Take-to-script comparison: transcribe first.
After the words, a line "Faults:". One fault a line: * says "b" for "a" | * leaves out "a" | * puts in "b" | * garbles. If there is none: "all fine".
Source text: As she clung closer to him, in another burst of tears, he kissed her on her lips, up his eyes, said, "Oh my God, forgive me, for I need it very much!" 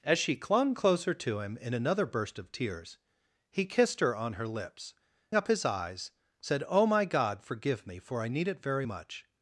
As she clung closer to him, in another burst of tears, he kissed her on her lips, up his eyes, said, "Oh my God, forgive me, for I need it very much!"
Faults:
all fine